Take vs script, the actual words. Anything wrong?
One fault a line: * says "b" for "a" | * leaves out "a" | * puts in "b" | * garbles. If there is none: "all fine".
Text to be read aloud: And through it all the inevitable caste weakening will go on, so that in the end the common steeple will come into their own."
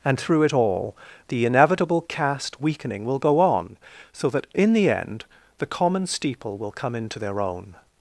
all fine